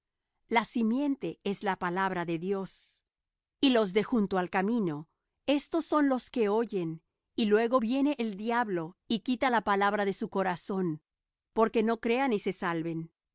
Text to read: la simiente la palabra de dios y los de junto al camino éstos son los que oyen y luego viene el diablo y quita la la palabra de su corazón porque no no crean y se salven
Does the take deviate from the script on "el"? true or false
false